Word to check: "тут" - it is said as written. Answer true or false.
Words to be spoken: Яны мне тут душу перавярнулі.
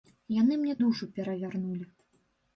false